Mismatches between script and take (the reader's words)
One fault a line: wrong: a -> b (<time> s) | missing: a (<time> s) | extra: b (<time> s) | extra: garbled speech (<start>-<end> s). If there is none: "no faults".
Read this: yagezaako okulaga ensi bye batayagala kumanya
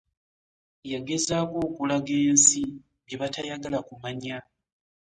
no faults